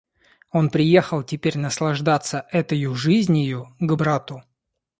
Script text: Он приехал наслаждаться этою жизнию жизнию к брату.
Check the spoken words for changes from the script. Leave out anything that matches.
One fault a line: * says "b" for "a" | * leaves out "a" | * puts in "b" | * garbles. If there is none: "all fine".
* puts in "теперь"
* leaves out "жизнию"